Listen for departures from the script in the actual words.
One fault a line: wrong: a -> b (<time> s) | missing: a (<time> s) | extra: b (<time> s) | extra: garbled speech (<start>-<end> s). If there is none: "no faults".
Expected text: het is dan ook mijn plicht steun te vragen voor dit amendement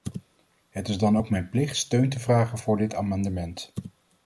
no faults